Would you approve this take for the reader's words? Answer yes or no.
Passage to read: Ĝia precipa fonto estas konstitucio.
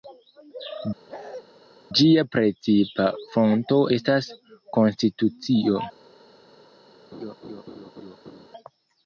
yes